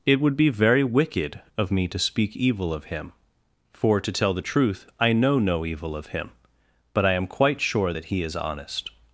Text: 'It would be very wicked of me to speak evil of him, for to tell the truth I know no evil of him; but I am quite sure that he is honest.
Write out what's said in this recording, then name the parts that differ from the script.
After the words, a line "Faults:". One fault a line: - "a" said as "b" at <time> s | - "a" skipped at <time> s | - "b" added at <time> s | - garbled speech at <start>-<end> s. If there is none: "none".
'It would be very wicked of me to speak evil of him, for to tell the truth I know no evil of him; but I am quite sure that he is honest.
Faults:
none